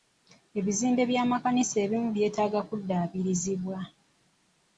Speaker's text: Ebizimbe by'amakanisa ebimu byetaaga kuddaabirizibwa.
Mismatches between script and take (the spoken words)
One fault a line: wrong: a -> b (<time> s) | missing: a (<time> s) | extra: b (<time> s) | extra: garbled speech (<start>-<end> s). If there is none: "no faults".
no faults